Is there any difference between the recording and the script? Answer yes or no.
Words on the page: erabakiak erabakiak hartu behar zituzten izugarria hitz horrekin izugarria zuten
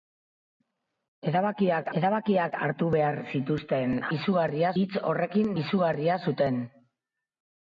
no